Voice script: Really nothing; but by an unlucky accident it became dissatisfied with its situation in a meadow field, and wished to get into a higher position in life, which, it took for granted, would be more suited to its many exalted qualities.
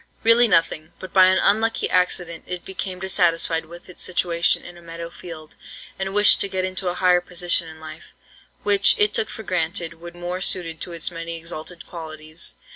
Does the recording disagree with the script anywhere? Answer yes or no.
yes